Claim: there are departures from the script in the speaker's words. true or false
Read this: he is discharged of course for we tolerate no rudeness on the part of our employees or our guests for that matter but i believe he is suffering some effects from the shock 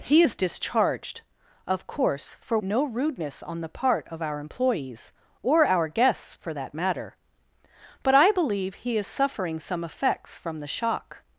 true